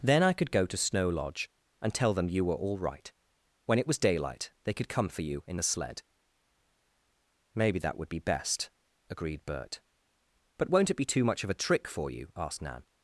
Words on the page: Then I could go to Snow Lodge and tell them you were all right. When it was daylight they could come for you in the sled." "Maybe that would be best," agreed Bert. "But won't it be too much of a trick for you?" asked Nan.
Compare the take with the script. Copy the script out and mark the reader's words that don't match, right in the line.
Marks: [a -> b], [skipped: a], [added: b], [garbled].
Then I could go to Snow Lodge and tell them you were all right. When it was daylight they could come for you in the sled." "Maybe that would be best," agreed Bert. "But won't it be too much of a trick for you?" asked Nan.